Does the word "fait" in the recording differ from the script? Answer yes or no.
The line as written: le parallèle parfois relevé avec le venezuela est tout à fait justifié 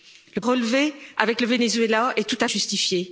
yes